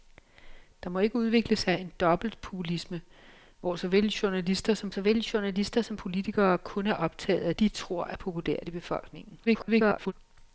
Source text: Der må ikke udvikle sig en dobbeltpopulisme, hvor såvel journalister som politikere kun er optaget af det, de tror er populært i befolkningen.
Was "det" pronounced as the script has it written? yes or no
no